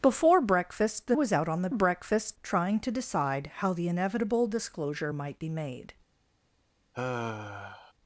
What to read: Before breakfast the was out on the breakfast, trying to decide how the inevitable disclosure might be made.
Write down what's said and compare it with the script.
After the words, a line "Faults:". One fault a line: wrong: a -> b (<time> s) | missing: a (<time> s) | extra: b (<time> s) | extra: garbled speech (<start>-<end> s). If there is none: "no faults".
Before breakfast the was out on the breakfast, trying to decide how the inevitable disclosure might be made.
Faults:
no faults